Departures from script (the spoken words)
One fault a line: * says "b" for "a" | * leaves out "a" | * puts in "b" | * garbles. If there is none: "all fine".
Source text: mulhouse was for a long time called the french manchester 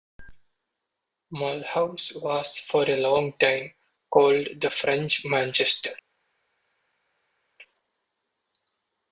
all fine